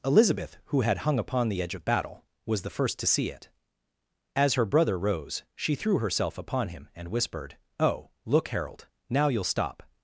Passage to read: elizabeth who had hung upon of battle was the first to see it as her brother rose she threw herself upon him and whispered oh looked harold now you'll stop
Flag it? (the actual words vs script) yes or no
yes